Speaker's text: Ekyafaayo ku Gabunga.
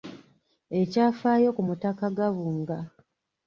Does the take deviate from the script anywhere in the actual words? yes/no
yes